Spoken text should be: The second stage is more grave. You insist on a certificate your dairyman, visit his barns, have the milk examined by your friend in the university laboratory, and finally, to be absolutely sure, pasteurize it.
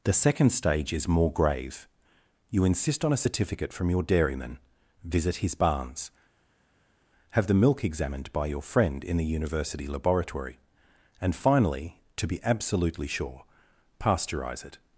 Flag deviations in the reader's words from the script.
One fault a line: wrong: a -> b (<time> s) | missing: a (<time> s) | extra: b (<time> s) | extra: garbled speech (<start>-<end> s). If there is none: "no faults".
extra: from (3.7 s)